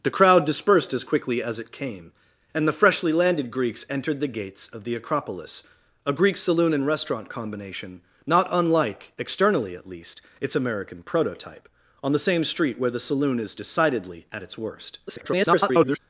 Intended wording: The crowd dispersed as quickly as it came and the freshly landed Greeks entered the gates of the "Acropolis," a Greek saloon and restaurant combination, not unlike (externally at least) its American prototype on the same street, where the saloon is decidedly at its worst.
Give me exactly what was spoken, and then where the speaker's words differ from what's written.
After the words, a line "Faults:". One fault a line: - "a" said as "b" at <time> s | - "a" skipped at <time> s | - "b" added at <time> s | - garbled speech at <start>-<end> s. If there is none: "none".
The crowd dispersed as quickly as it came and the freshly landed Greeks entered the gates of the "Acropolis," a Greek saloon and restaurant combination, not unlike (externally at least) its American prototype on the same street, where the saloon is decidedly at its worst. [garbled]
Faults:
- garbled speech at 15.1-16.0 s